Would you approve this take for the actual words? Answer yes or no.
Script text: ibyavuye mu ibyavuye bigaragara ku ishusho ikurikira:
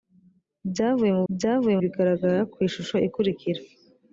yes